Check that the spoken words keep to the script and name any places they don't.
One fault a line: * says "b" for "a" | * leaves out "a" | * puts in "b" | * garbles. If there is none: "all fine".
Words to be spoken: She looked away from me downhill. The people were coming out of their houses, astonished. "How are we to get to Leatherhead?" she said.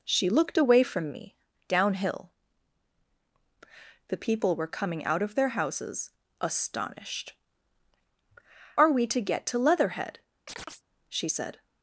* leaves out "How"